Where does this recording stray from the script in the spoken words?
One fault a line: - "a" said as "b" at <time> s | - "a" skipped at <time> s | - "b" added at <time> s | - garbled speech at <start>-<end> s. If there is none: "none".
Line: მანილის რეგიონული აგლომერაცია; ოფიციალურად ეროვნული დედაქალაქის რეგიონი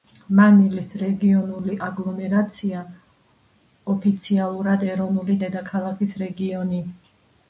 none